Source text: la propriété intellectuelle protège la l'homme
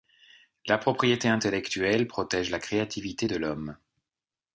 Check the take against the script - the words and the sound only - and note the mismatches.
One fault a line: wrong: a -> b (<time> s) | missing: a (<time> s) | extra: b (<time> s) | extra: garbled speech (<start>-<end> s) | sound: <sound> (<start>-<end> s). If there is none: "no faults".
extra: créativité de (2.6 s)